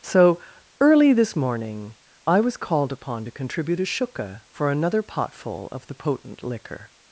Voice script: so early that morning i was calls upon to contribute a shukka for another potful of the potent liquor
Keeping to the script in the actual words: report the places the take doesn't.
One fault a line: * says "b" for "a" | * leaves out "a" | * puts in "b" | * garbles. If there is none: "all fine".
* says "this" for "that"
* says "called" for "calls"